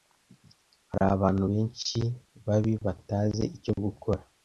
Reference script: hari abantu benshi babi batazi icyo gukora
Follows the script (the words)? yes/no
yes